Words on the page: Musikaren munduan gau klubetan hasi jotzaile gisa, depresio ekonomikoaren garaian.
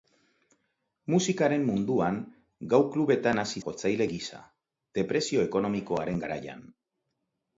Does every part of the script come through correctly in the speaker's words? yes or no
yes